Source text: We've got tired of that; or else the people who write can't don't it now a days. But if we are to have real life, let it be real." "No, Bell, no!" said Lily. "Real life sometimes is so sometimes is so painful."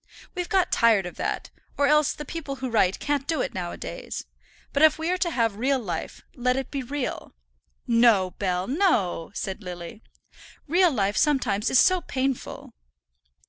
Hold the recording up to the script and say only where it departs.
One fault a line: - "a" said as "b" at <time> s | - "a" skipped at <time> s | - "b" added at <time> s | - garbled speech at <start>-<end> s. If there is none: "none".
- "don't" said as "do" at 3.3 s
- "sometimes is so" skipped at 12.0 s